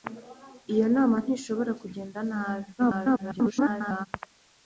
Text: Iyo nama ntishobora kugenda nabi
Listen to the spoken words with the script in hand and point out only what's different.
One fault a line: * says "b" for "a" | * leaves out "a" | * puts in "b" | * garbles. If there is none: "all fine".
* garbles